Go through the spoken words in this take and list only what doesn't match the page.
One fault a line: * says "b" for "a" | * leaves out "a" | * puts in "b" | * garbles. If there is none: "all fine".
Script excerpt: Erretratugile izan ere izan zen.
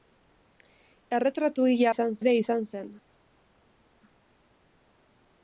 all fine